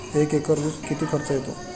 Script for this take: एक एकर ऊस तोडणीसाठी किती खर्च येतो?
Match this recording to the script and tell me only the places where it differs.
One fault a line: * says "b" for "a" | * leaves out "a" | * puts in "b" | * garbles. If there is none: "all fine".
* leaves out "तोडणीसाठी"